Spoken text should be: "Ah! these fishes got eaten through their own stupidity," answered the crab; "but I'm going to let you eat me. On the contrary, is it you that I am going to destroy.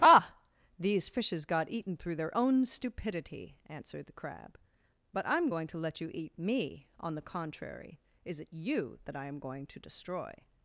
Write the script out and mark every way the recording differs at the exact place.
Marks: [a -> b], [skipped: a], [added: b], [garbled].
"Ah! these fishes got eaten through their own stupidity," answered the crab; "but I'm going to let you eat me. On the contrary, is it you that I am going to destroy.